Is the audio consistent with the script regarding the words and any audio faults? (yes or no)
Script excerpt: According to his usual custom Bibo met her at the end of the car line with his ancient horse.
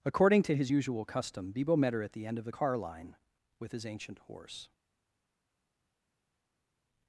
yes